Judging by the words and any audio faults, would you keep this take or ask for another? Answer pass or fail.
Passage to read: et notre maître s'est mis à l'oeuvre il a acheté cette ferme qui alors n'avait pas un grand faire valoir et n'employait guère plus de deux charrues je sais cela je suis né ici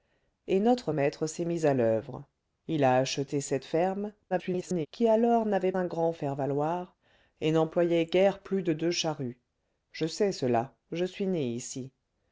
fail